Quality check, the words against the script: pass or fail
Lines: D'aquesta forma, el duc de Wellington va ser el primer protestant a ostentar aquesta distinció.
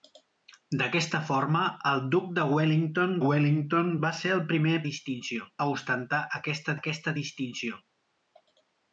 fail